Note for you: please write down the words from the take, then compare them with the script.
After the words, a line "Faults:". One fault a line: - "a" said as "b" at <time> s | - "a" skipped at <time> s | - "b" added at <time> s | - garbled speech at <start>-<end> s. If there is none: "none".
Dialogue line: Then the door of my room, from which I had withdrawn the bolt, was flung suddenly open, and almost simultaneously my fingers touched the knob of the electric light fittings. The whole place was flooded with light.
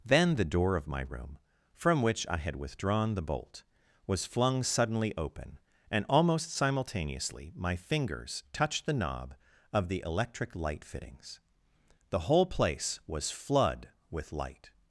Then the door of my room, from which I had withdrawn the bolt, was flung suddenly open, and almost simultaneously my fingers touched the knob of the electric light fittings. The whole place was flood with light.
Faults:
- "flooded" said as "flood" at 13.3 s